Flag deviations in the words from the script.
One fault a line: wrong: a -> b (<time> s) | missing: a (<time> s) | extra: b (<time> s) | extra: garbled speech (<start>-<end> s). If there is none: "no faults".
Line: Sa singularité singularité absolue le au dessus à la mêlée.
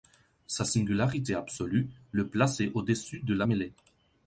missing: singularité (1.4 s)
extra: plaçait (2.3 s)
wrong: à -> de (3.2 s)